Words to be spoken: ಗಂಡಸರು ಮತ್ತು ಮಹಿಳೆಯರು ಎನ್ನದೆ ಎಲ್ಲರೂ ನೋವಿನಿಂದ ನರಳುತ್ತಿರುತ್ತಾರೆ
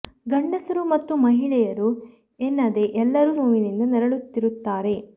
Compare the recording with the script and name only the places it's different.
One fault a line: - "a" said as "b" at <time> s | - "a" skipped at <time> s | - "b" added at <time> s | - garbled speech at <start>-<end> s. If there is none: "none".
none